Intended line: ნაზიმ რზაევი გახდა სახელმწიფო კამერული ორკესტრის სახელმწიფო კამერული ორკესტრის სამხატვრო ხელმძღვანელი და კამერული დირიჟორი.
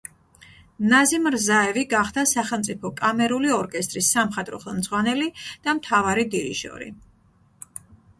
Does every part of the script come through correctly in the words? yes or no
no